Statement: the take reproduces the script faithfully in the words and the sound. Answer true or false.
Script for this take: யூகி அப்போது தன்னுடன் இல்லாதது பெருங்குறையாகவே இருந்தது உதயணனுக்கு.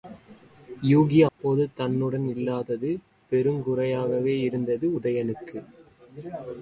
false